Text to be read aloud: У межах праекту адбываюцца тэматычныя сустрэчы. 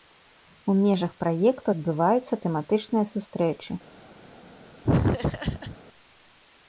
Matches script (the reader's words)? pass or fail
pass